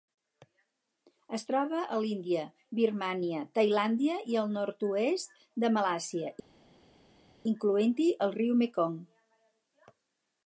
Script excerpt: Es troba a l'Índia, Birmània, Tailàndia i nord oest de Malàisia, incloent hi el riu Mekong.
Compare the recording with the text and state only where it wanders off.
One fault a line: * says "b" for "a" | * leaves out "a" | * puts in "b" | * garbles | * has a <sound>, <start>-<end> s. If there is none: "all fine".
* puts in "el"